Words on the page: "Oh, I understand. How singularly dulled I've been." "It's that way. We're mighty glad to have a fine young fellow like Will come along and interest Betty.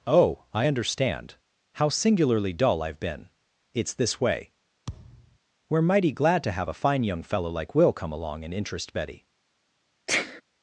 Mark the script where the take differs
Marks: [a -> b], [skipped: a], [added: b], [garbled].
"Oh, I understand. How singularly [dulled -> dull] I've been." "It's [that -> this] way. We're mighty glad to have a fine young fellow like Will come along and interest Betty.